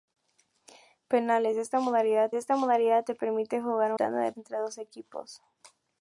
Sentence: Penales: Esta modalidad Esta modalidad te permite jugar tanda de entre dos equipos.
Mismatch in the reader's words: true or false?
false